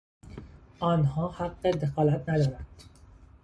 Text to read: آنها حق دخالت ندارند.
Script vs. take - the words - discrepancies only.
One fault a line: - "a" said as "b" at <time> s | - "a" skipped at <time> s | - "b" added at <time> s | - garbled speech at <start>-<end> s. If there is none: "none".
none